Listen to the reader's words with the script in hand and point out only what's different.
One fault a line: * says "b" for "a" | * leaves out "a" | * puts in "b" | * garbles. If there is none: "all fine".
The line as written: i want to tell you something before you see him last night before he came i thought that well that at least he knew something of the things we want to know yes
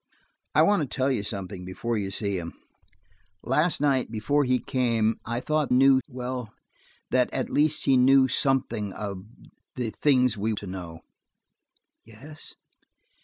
* says "knew" for "that"
* leaves out "want"